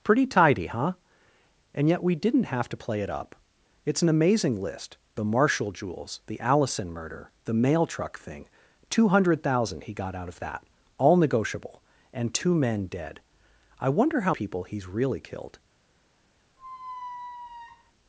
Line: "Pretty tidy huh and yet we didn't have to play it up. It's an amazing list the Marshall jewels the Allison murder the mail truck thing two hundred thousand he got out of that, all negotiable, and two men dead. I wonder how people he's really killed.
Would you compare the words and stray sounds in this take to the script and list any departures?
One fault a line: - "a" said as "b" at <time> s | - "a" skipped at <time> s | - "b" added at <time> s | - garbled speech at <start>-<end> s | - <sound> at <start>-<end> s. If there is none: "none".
- squeak at 16.6-17.9 s